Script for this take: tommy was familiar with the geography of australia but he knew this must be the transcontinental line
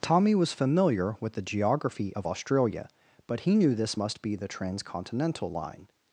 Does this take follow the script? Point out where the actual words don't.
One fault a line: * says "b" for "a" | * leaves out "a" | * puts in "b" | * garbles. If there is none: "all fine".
all fine